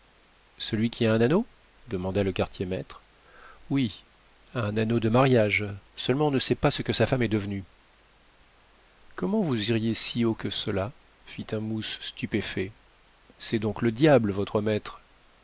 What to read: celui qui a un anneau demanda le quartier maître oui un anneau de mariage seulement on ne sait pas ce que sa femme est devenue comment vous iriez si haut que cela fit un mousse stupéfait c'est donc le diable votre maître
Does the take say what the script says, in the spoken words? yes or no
yes